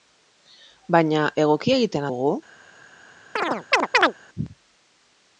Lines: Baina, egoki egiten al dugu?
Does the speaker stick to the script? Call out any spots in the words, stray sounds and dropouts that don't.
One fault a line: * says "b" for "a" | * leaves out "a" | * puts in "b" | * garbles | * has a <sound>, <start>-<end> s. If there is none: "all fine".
* leaves out "al"
* has a chirp, 3.4-4.1 s